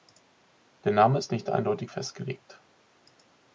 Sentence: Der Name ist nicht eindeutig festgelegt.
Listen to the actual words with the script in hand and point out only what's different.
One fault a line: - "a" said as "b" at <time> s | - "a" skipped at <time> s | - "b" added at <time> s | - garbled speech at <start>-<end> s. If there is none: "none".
none